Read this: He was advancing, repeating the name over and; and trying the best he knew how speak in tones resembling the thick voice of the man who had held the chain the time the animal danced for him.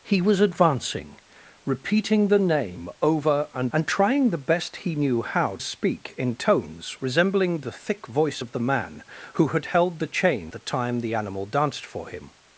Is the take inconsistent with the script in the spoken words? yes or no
no